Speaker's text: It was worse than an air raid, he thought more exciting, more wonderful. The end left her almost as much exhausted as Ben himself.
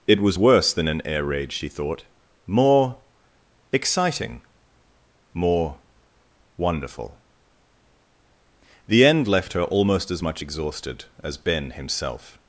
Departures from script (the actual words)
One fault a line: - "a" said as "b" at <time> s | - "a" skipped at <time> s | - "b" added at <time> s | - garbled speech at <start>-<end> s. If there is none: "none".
- "he" said as "she" at 1.5 s